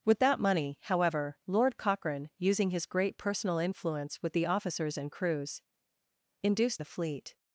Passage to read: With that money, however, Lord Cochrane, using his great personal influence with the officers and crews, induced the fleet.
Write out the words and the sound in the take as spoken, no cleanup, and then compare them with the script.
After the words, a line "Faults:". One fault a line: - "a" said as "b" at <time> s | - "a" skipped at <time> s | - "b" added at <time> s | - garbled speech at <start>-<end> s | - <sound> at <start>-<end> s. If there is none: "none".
With that money, however, Lord Cochrane, using his great personal influence with the officers and crews, induced the fleet.
Faults:
none